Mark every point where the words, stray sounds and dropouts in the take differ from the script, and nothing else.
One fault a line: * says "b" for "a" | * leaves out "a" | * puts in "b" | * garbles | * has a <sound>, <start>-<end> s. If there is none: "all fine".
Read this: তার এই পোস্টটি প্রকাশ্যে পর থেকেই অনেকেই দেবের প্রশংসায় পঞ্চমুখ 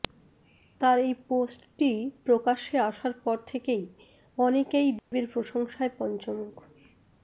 * puts in "আসার"
* has a dropout, 5.0-5.1 s